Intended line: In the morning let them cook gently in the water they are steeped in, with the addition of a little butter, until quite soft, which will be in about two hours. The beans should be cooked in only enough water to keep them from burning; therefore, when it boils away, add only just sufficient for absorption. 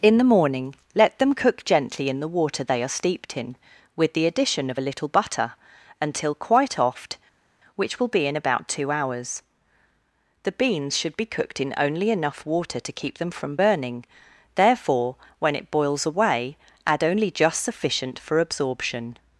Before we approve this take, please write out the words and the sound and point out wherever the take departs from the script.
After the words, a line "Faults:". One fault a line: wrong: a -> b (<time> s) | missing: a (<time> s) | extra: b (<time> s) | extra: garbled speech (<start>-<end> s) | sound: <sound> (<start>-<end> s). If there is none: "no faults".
In the morning let them cook gently in the water they are steeped in, with the addition of a little butter, until quite oft, which will be in about two hours. The beans should be cooked in only enough water to keep them from burning; therefore, when it boils away, add only just sufficient for absorption.
Faults:
wrong: soft -> oft (6.8 s)